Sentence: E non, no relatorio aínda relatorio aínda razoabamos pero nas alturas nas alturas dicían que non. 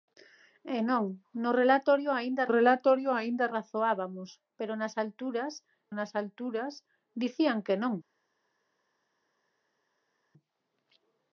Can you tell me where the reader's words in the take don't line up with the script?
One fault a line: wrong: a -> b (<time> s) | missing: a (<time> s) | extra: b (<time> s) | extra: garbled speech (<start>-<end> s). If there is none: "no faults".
no faults